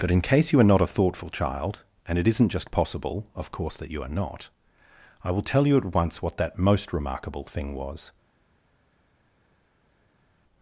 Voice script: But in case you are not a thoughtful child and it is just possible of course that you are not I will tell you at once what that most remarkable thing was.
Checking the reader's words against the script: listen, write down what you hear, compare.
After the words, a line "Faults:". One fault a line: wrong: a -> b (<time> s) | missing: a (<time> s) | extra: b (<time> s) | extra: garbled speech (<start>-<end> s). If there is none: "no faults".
But in case you are not a thoughtful child and it isn't just possible of course that you are not I will tell you at once what that most remarkable thing was.
Faults:
wrong: is -> isn't (2.3 s)